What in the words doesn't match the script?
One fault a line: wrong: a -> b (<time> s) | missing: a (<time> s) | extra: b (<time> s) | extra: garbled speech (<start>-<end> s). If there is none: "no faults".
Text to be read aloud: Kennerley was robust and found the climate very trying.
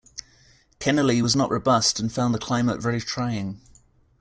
extra: not (1.3 s)